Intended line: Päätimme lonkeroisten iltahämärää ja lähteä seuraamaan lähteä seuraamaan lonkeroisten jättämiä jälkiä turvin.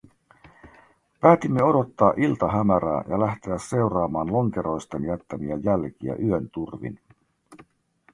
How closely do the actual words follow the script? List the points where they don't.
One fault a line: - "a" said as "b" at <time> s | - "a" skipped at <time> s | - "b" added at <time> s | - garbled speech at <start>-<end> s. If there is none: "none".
- "lonkeroisten" said as "odottaa" at 1.6 s
- "lähteä seuraamaan" skipped at 4.3 s
- "yön" added at 6.2 s